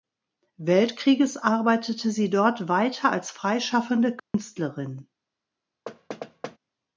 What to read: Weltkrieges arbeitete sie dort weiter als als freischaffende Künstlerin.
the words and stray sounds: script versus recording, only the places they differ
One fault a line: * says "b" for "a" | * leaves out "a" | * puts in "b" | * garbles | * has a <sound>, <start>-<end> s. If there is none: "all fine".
* leaves out "als"
* has a dropout, 4.2-4.3 s
* has a thud, 5.9-6.6 s